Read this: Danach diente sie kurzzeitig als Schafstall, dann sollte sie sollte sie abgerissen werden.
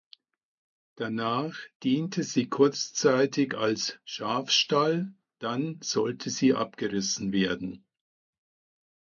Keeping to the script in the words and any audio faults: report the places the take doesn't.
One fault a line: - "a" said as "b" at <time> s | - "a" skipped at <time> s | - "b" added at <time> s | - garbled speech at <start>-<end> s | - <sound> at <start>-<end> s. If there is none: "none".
- "sollte sie" skipped at 6.5 s